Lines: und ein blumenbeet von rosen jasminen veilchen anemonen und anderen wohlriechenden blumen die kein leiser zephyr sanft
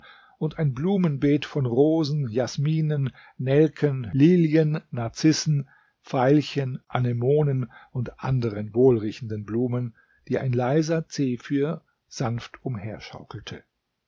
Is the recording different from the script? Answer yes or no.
yes